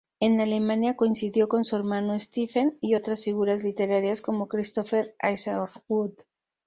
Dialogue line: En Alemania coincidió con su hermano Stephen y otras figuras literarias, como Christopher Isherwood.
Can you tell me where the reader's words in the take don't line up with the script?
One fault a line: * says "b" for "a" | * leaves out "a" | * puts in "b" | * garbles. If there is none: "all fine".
all fine